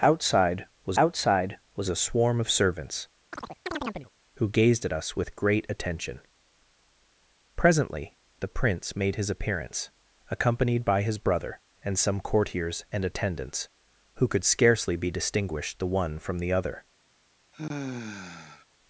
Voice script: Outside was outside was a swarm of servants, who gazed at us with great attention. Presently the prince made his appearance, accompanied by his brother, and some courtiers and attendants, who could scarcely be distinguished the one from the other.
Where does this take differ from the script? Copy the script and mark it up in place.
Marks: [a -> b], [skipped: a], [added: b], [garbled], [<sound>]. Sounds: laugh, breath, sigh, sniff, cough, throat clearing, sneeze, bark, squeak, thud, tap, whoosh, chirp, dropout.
Outside was outside was a swarm of servants, [chirp] who gazed at us with great attention. Presently the prince made his appearance, accompanied by his brother, and some courtiers and attendants, who could scarcely be distinguished the one from the other. [sigh]